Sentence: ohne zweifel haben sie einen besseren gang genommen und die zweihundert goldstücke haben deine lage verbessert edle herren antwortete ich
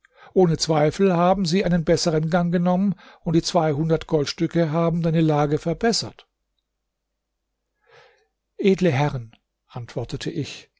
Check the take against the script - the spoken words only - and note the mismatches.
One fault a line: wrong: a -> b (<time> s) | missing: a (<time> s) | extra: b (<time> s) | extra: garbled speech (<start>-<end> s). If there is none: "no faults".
no faults